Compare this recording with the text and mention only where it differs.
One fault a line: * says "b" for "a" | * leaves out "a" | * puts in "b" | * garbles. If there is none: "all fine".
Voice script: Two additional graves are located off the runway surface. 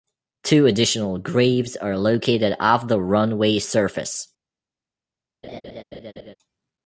all fine